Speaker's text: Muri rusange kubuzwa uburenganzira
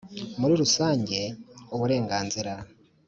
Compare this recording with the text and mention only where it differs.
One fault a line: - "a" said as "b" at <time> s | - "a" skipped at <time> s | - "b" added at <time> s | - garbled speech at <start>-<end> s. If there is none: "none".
- "kubuzwa" skipped at 1.2 s